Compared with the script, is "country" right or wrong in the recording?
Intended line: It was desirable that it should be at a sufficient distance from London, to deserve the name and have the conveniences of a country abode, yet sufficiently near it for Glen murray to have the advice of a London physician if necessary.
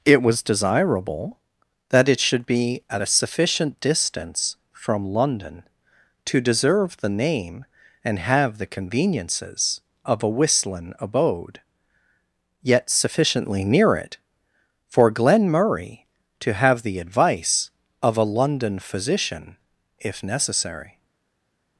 wrong